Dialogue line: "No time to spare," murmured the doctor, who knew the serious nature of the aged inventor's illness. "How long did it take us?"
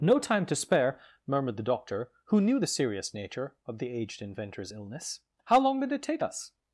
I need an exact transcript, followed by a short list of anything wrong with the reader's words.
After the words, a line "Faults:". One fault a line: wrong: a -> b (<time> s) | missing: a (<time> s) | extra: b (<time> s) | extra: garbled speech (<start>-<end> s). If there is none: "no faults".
"No time to spare," murmured the doctor, who knew the serious nature of the aged inventor's illness. "How long did it take us?"
Faults:
no faults